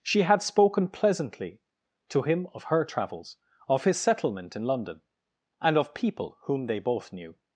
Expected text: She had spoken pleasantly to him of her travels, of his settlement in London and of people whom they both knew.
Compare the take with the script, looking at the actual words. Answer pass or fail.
pass